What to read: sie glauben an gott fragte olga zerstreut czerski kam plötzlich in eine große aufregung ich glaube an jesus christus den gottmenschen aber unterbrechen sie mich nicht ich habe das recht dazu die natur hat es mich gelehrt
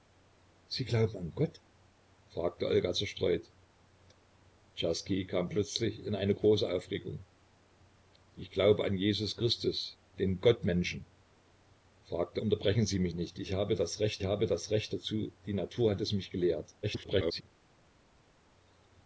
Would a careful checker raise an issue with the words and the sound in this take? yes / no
yes